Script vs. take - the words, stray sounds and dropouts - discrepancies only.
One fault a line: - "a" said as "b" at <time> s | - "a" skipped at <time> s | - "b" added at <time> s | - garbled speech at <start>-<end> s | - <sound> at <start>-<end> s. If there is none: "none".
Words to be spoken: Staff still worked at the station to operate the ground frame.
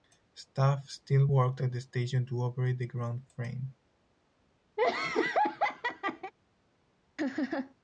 - laugh at 4.8-6.3 s
- laugh at 7.2-7.7 s